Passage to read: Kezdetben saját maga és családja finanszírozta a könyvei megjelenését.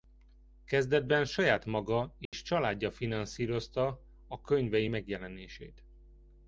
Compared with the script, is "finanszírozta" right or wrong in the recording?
right